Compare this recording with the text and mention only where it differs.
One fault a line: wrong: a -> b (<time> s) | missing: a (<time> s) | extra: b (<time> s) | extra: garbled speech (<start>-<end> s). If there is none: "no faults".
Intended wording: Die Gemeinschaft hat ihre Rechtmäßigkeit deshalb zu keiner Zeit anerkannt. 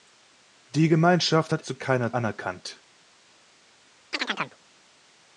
missing: ihre Rechtmäßigkeit deshalb (1.6 s)
missing: Zeit (2.1 s)